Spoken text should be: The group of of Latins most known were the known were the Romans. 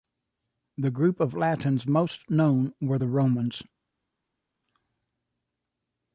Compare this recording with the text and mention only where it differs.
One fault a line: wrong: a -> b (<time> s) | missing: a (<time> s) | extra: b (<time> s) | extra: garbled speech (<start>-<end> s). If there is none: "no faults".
missing: of (1.4 s)
missing: known were the (3.1 s)